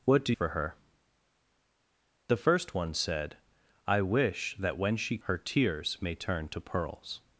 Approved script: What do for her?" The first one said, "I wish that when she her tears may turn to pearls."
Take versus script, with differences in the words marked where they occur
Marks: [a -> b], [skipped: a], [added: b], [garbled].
What do for her?" The first one said, "I wish that when she her tears may turn to pearls."